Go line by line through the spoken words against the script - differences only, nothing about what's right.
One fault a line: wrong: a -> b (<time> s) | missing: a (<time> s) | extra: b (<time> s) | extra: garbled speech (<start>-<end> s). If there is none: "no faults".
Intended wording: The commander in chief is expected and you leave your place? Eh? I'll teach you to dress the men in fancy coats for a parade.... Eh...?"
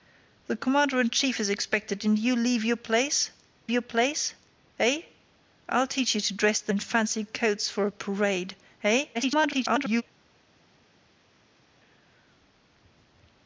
extra: your place (3.7 s)
missing: men (6.7 s)
extra: garbled speech (9.1-10.0 s)